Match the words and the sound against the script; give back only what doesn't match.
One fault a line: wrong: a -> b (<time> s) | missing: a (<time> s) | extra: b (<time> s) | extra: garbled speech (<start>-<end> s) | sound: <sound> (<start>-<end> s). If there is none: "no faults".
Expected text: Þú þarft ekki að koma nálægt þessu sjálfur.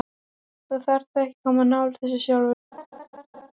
sound: laugh (2.7-3.5 s)